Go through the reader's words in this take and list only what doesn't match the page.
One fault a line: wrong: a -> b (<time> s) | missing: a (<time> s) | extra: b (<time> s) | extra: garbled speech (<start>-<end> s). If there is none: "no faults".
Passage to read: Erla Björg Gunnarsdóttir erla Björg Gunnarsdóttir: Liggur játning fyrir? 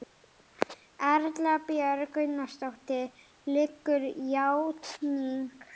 missing: erla Björg Gunnarsdóttir (3.1 s)